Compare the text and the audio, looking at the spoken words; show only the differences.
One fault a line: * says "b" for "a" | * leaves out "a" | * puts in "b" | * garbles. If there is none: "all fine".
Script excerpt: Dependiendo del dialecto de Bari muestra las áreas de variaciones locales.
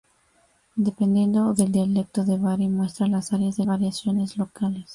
all fine